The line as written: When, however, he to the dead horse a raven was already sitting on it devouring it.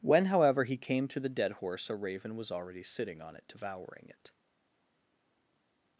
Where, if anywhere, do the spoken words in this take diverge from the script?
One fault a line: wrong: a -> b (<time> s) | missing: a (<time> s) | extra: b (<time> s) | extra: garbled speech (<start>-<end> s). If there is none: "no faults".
extra: came (0.8 s)